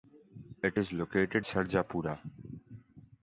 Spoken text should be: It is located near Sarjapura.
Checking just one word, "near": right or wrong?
wrong